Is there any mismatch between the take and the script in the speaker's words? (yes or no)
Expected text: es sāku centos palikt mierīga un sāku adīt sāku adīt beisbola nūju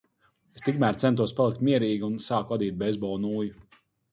yes